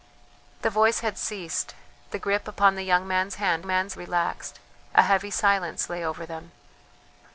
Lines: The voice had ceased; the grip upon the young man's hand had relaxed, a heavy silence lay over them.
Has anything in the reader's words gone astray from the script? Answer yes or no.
yes